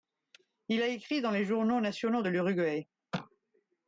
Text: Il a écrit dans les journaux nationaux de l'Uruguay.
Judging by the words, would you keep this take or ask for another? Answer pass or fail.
pass